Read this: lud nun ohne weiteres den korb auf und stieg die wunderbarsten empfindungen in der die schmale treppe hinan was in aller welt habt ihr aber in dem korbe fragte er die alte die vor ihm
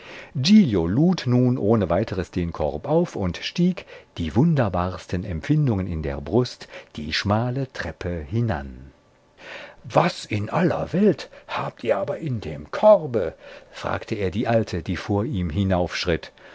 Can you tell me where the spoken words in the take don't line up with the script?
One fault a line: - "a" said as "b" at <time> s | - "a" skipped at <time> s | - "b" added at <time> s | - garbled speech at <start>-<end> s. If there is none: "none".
- "brust" added at 6.2 s